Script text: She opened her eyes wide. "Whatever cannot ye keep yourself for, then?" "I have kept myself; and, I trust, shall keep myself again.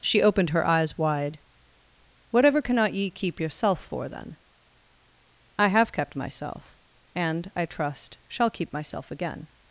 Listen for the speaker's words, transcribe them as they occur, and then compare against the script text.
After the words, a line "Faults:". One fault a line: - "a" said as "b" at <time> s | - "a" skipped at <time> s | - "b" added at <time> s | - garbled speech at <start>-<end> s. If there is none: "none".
She opened her eyes wide. "Whatever cannot ye keep yourself for, then?" "I have kept myself; and, I trust, shall keep myself again.
Faults:
none